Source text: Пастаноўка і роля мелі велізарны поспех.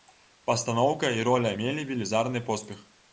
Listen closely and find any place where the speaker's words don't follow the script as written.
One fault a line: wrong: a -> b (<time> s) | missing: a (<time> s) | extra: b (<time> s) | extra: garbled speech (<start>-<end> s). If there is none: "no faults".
no faults